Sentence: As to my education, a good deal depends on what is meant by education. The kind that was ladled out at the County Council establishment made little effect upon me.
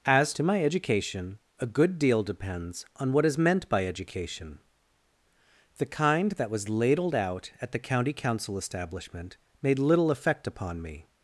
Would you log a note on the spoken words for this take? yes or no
no